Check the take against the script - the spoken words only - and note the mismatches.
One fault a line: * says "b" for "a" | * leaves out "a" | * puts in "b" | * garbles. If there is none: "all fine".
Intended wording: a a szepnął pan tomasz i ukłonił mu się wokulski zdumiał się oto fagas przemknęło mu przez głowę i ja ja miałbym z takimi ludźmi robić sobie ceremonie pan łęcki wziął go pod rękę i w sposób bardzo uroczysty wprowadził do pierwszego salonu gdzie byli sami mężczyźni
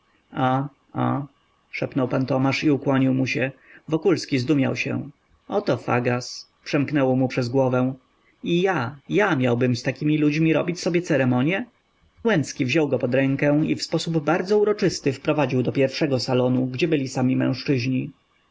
* leaves out "pan"